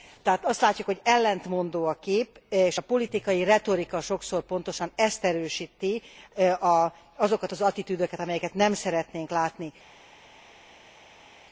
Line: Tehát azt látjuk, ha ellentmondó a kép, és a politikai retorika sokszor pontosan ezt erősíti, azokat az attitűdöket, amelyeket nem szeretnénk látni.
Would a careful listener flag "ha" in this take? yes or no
yes